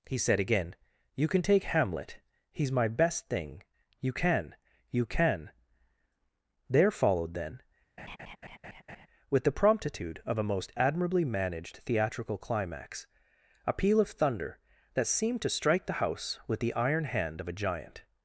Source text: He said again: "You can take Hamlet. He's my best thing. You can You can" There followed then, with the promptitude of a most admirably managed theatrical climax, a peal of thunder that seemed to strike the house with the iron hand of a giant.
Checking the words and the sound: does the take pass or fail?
fail